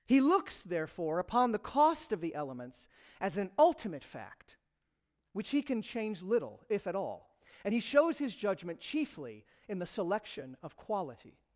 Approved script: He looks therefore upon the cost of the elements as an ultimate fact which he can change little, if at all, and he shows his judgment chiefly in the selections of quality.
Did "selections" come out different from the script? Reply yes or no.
yes